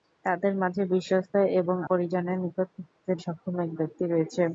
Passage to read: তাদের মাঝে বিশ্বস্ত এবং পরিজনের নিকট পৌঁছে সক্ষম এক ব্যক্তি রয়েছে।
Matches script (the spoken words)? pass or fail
pass